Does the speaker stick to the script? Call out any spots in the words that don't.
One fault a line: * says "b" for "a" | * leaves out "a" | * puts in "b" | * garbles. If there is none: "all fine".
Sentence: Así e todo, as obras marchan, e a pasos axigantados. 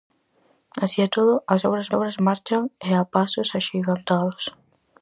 * puts in "obras"